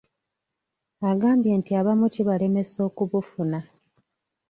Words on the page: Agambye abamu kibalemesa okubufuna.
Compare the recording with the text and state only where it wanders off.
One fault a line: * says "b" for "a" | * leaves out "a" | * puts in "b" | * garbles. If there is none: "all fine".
* puts in "nti"